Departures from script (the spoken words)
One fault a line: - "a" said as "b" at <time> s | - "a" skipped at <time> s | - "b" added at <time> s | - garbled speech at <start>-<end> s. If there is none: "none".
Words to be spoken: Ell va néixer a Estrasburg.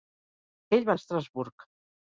- "néixer" skipped at 0.9 s